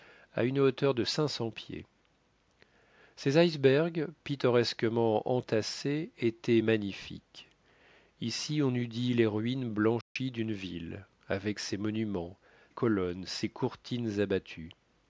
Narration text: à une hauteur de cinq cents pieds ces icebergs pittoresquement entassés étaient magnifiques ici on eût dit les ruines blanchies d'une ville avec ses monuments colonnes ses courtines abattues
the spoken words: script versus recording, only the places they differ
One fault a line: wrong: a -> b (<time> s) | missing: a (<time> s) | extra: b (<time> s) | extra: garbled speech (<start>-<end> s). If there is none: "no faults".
no faults